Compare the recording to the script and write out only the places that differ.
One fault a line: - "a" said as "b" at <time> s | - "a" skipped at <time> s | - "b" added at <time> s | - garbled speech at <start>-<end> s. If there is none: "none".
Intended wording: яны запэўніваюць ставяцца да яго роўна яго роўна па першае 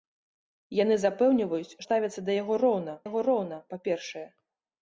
none